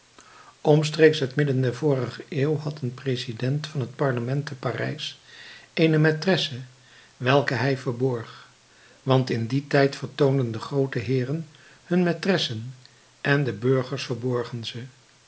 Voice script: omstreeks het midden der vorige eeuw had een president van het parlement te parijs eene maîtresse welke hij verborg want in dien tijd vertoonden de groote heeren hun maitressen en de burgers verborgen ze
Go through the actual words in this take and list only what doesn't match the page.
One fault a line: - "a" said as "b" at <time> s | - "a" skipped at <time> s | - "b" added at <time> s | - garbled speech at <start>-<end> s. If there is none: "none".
none